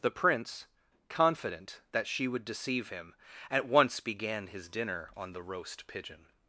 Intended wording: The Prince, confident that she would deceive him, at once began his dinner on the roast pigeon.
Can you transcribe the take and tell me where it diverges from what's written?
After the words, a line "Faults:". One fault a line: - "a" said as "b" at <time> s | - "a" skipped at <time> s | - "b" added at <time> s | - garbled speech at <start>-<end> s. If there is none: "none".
The Prince, confident that she would deceive him, at once began his dinner on the roast pigeon.
Faults:
none